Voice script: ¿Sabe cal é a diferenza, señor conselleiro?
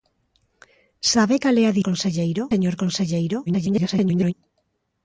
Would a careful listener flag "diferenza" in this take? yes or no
yes